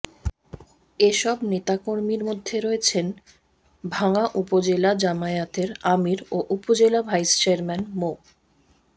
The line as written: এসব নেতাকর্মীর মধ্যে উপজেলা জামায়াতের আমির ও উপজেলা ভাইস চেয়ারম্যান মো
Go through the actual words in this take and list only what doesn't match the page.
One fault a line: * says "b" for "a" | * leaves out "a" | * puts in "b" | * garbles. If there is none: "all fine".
* puts in "রয়েছেন ভাঙ্গা"